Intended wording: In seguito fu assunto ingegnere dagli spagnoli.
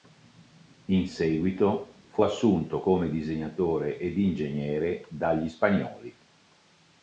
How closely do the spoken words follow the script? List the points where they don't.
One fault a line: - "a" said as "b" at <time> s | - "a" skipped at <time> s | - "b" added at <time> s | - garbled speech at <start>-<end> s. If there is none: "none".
- "come disegnatore ed" added at 2.8 s